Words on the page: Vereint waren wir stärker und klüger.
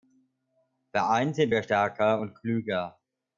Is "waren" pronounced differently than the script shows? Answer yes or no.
yes